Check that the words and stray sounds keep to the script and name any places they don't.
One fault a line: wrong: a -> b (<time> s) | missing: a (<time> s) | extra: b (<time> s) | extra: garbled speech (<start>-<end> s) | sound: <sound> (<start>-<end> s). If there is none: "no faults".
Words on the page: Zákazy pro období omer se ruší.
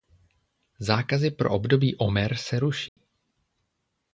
sound: dropout (2.9-3.0 s)